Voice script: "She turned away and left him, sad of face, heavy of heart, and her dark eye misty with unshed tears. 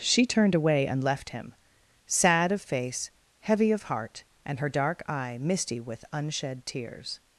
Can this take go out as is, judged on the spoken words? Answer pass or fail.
pass